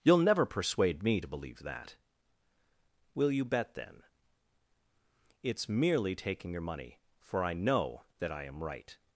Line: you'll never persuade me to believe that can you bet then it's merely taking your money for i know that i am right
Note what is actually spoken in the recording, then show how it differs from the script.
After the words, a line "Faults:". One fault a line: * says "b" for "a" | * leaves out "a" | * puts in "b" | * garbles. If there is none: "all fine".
you'll never persuade me to believe that will you bet then it's merely taking your money for i know that i am right
Faults:
* says "will" for "can"